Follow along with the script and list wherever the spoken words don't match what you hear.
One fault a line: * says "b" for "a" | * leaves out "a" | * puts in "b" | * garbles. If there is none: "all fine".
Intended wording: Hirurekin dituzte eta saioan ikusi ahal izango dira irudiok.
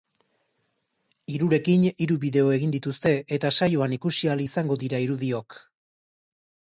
* puts in "hiru bideo egin"